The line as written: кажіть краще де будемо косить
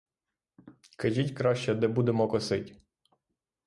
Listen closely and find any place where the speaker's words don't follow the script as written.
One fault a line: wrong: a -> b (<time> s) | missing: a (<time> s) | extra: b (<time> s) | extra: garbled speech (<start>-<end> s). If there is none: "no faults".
no faults